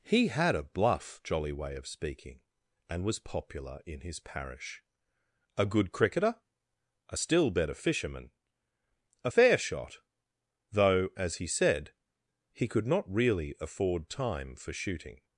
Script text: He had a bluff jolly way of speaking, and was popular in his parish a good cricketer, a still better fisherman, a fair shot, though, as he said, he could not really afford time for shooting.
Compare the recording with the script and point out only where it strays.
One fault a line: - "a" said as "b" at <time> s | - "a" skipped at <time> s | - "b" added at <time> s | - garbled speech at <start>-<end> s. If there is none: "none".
none